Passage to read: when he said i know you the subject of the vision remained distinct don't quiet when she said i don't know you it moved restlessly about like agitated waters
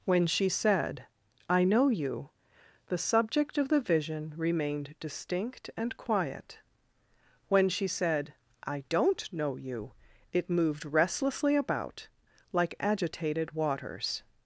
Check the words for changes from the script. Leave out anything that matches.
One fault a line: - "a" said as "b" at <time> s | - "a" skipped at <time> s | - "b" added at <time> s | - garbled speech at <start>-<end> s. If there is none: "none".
- "he" said as "she" at 0.2 s
- "don't" said as "and" at 5.8 s